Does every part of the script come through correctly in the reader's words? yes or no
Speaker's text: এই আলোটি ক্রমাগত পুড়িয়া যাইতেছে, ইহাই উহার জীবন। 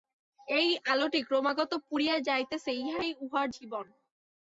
yes